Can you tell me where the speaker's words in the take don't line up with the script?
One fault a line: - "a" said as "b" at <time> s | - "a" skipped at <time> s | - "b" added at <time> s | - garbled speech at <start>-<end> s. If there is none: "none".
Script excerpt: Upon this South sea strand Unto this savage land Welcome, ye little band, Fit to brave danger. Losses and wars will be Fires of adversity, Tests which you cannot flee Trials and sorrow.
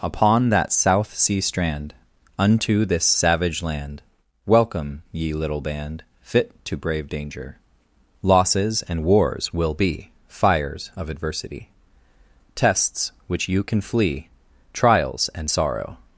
- "this" said as "that" at 0.5 s
- "cannot" said as "can" at 13.6 s